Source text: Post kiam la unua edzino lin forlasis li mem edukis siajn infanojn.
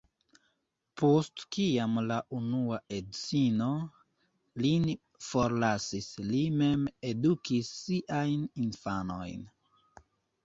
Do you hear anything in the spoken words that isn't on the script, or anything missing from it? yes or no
no